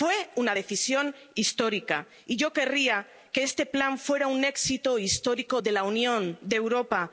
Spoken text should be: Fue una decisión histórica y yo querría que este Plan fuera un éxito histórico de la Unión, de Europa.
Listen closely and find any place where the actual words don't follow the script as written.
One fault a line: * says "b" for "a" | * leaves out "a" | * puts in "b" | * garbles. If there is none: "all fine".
all fine